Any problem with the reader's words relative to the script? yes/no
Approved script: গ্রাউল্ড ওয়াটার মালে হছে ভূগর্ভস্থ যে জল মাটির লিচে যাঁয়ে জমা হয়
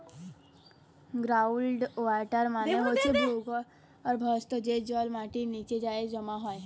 no